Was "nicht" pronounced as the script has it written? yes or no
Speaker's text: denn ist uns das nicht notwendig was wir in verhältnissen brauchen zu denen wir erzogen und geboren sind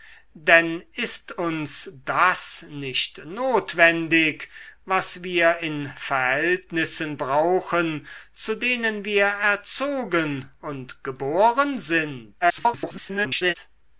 yes